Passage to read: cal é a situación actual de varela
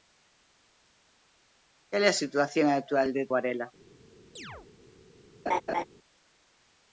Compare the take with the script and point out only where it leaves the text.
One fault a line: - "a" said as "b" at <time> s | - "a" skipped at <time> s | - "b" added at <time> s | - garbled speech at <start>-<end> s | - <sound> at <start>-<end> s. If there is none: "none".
- chirp at 4.4-4.7 s
- laugh at 5.5-5.8 s